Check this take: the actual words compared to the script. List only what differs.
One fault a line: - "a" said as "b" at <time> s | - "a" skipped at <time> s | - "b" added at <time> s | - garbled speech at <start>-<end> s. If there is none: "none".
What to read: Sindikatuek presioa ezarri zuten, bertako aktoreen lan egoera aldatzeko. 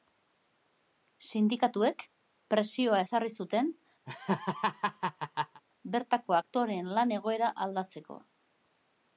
none